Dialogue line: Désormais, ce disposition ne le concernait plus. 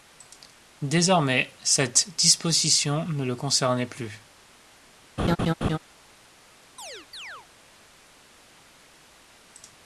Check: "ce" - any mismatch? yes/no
yes